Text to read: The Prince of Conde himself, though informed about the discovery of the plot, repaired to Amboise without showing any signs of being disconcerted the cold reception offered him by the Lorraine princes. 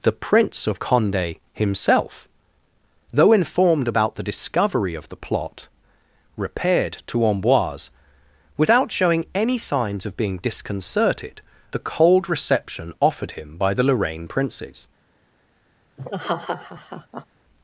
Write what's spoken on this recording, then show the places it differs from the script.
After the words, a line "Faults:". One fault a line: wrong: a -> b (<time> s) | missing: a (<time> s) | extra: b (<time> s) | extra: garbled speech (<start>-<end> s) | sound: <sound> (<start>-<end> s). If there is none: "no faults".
The Prince of Conde himself, though informed about the discovery of the plot, repaired to Amboise without showing any signs of being disconcerted the cold reception offered him by the Lorraine princes.
Faults:
sound: laugh (16.0-17.3 s)